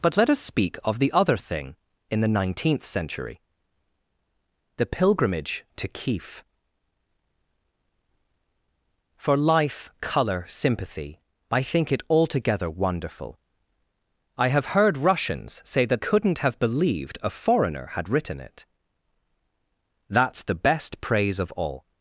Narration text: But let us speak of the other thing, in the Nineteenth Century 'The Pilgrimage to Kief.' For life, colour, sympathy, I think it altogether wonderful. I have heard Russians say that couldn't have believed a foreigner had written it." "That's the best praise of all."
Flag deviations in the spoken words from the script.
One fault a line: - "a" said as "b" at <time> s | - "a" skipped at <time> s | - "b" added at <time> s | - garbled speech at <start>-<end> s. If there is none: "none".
none